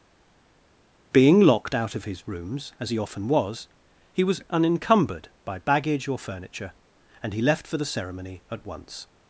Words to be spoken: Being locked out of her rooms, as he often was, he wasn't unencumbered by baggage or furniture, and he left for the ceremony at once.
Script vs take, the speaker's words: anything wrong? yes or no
yes